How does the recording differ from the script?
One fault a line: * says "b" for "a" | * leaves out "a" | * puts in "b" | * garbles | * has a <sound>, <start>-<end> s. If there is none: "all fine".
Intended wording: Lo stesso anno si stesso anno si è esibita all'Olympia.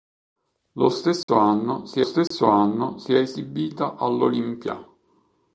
* has a dropout, 1.2-1.3 s
* has a dropout, 2.3-2.3 s